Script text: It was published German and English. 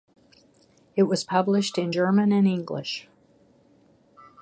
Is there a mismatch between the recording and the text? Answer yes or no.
yes